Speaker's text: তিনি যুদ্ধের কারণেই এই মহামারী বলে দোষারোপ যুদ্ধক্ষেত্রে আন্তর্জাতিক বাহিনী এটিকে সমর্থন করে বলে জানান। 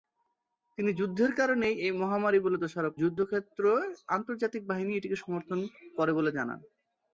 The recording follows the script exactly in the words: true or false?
true